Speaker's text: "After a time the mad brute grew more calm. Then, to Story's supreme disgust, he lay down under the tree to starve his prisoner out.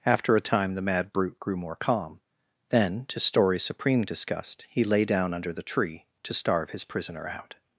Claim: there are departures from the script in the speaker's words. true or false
false